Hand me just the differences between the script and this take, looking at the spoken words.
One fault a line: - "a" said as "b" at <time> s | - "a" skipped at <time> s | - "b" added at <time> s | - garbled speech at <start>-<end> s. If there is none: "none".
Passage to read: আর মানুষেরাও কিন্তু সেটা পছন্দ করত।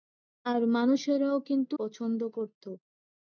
- "সেটা" skipped at 1.8 s